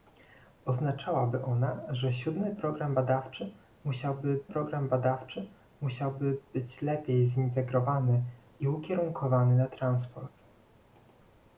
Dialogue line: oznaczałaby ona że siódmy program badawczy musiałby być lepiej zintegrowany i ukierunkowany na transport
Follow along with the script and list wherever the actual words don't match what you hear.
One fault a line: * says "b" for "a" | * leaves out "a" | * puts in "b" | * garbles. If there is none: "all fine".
* puts in "program badawczy musiałby"